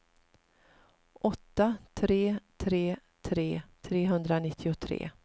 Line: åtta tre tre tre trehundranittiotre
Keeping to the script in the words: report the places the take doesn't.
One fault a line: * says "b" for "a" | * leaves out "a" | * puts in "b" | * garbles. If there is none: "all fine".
all fine